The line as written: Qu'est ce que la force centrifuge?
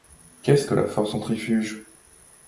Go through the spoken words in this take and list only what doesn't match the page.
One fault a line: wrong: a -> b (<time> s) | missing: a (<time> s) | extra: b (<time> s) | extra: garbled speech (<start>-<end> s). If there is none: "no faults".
no faults